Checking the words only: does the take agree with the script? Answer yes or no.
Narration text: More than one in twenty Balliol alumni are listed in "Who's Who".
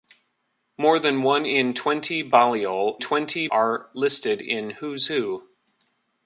no